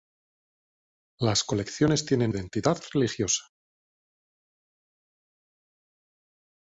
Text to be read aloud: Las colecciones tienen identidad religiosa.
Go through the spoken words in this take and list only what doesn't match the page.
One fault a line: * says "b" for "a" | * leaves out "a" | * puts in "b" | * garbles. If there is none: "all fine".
all fine